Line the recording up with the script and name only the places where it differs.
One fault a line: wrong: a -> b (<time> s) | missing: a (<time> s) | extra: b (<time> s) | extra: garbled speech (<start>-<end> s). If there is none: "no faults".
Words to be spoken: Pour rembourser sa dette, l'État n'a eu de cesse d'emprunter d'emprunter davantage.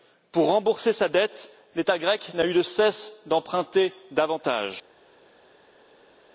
extra: grec (2.0 s)
missing: d'emprunter (3.9 s)